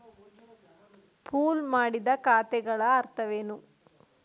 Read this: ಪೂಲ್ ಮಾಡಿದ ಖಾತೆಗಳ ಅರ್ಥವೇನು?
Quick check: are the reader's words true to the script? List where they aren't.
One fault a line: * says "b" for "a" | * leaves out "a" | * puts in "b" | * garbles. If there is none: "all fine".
all fine